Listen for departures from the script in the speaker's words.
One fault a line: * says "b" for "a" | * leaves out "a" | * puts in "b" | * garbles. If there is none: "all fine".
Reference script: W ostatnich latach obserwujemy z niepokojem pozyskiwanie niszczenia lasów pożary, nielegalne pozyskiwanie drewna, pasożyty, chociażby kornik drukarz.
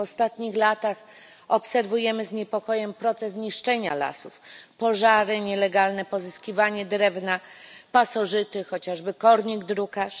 * says "proces" for "pozyskiwanie"